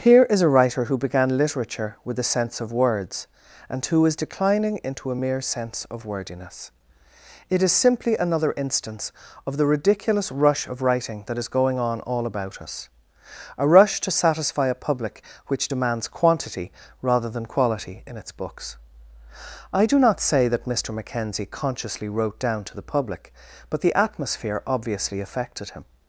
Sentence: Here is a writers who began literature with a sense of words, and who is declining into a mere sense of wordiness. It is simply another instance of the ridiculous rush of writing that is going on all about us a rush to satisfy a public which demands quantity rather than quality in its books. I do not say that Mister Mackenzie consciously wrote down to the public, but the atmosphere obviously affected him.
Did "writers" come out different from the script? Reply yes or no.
yes